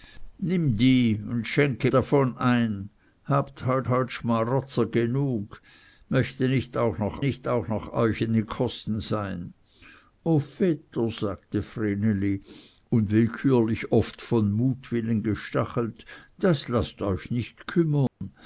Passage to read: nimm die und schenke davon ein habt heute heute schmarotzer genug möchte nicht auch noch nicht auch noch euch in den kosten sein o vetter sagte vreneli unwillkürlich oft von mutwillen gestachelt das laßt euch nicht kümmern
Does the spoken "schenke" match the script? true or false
true